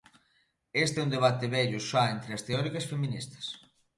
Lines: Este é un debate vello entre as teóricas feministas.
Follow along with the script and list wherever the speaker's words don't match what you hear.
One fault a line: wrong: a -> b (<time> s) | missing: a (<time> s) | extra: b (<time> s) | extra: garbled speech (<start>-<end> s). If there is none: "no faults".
extra: xa (1.9 s)